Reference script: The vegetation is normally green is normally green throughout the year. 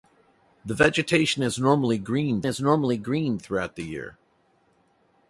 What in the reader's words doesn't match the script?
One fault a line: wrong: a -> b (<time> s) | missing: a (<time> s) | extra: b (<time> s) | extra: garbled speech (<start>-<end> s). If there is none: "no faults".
no faults